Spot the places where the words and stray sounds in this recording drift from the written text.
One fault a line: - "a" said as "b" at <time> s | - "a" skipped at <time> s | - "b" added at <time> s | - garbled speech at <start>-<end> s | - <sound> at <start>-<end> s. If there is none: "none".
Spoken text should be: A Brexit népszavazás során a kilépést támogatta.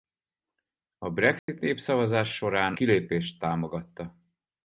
- dropout at 1.4-1.5 s
- "a" skipped at 2.7 s